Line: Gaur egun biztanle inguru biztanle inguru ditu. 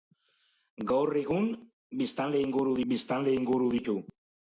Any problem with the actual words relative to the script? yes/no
no